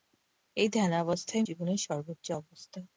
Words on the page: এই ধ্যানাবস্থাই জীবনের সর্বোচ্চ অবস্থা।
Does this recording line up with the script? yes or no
yes